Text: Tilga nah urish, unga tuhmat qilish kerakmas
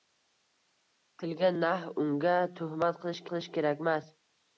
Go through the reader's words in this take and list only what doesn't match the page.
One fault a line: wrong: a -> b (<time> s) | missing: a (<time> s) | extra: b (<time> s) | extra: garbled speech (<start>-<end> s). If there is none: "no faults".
missing: urish (1.8 s)
extra: qilish (3.3 s)